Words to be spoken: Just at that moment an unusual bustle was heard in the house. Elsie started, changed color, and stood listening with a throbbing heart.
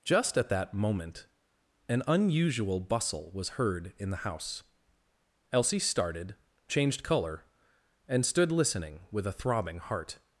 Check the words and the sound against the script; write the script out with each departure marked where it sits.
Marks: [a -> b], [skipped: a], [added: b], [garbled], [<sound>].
Just at that moment an unusual bustle was heard in the house. Elsie started, changed color, and stood listening with a throbbing heart.